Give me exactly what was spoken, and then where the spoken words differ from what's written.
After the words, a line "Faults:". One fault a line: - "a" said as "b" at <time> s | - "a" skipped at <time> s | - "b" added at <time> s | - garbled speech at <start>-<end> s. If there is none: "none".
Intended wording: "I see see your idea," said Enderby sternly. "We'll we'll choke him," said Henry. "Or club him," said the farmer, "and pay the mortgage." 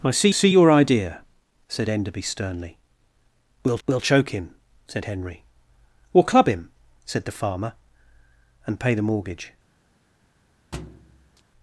"I see see your idea," said Enderby sternly. "We'll we'll choke him," said Henry. "Or club him," said the farmer, "and pay the mortgage."
Faults:
none